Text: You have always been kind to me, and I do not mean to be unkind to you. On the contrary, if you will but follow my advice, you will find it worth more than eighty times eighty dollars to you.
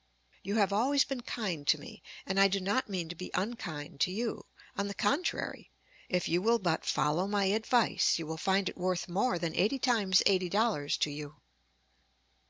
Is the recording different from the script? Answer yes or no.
no